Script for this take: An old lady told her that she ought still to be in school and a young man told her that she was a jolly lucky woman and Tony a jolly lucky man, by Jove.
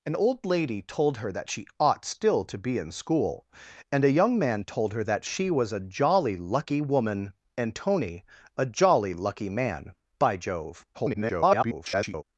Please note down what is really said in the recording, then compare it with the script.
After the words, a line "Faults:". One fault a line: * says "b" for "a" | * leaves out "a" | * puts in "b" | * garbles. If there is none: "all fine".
An old lady told her that she ought still to be in school and a young man told her that she was a jolly lucky woman and Tony a jolly lucky man, by Jove. [garbled]
Faults:
* garbles